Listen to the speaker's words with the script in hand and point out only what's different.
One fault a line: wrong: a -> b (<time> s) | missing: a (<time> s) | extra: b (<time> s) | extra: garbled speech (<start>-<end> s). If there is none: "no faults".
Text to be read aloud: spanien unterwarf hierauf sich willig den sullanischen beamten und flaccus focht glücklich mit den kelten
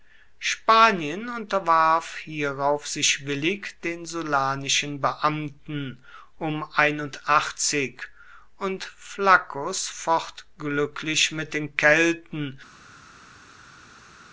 no faults